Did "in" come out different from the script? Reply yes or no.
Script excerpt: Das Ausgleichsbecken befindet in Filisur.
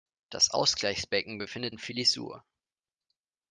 no